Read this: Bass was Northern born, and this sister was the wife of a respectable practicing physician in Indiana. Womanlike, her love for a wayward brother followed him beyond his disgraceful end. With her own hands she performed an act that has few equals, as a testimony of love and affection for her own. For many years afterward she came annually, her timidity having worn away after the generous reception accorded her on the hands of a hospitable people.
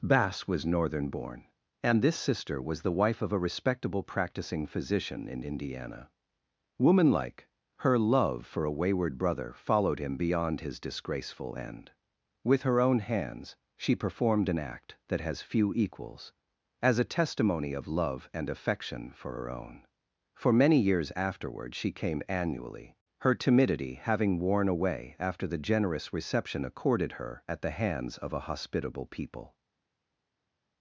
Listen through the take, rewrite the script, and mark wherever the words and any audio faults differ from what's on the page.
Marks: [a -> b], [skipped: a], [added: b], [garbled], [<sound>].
Bass was Northern born, and this sister was the wife of a respectable practicing physician in Indiana. Womanlike, her love for a wayward brother followed him beyond his disgraceful end. With her own hands she performed an act that has few equals, as a testimony of love and affection for her own. For many years afterward she came annually, her timidity having worn away after the generous reception accorded her [on -> at] the hands of a hospitable people.